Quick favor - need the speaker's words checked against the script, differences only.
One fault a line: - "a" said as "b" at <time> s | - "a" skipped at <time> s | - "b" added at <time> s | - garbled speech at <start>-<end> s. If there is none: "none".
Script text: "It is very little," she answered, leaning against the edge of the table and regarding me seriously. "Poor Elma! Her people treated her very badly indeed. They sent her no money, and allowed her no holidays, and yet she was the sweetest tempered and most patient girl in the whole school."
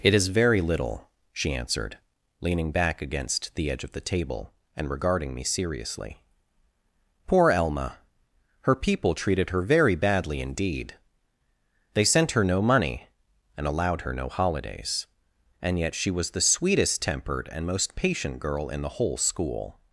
- "back" added at 2.7 s